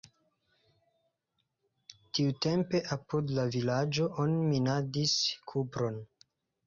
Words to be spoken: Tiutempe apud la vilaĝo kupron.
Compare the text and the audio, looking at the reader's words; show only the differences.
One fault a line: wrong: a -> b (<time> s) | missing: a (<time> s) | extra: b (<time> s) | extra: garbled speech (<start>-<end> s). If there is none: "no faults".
extra: oni minadis (4.3 s)